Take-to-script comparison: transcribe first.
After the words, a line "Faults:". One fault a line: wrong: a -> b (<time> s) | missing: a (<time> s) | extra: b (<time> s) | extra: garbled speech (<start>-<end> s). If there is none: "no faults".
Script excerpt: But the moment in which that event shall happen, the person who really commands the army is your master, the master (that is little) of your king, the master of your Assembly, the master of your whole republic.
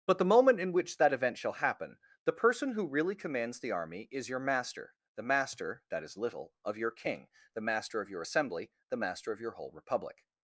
But the moment in which that event shall happen, the person who really commands the army is your master, the master (that is little) of your king, the master of your Assembly, the master of your whole republic.
Faults:
no faults